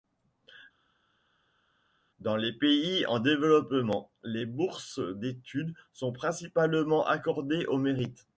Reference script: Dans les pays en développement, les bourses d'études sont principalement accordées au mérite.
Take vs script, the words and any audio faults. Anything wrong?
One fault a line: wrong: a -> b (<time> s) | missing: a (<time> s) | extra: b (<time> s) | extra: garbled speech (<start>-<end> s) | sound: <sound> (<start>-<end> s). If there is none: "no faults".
no faults